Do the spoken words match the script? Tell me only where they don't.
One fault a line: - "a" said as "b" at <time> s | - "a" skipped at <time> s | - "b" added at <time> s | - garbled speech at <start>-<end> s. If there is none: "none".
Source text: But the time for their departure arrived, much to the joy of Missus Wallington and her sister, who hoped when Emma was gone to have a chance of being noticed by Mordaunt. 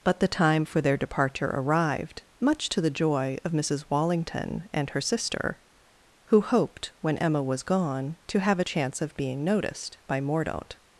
none